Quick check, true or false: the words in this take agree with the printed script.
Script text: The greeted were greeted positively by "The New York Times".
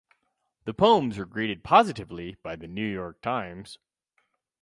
false